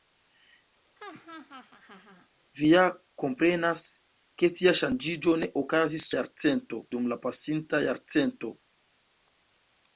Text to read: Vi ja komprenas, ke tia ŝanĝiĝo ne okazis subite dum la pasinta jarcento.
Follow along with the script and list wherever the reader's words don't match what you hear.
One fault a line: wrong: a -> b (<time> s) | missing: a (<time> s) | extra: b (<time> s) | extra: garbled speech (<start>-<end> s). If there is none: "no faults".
wrong: subite -> jarcento (6.2 s)